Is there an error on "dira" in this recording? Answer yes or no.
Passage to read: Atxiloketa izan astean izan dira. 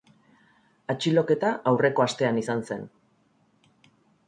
yes